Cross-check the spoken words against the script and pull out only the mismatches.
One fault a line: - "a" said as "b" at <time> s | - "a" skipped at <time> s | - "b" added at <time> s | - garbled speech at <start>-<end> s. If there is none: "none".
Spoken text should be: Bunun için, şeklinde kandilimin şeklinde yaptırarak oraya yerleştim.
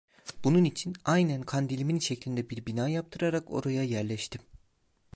- "şeklinde" said as "aynen" at 1.0 s
- "bir bina" added at 2.5 s